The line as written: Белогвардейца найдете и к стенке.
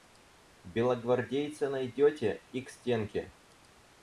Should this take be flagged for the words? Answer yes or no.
no